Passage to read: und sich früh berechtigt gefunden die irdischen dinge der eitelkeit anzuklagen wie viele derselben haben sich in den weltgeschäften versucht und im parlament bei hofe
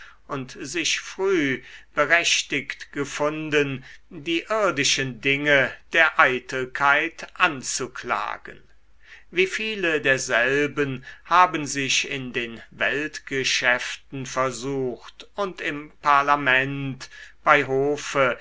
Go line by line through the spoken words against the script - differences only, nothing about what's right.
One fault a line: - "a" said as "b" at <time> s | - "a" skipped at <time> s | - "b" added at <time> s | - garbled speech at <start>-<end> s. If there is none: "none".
none